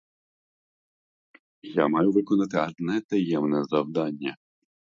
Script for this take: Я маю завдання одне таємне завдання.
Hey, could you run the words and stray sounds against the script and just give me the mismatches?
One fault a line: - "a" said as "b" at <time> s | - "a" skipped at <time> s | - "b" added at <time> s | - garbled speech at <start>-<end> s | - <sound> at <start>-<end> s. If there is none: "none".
- "завдання" said as "виконати" at 2.1 s